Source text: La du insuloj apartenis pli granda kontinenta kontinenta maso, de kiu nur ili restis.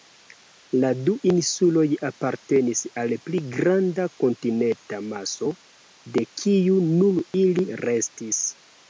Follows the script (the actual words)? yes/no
no